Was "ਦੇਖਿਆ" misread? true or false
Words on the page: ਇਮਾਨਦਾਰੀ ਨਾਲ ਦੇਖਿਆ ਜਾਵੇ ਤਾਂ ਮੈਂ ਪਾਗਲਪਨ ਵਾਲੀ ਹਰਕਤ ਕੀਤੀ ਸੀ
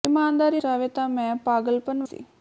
true